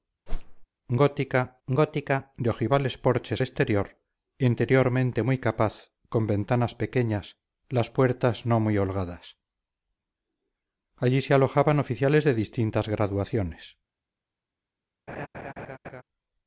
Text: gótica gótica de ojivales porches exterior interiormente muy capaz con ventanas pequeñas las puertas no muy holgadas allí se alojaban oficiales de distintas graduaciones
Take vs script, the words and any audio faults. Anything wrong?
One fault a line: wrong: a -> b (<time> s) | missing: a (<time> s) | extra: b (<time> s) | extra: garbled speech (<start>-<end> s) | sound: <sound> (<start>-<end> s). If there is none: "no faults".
sound: whoosh (0.3-0.7 s)
sound: laugh (15.1-16.0 s)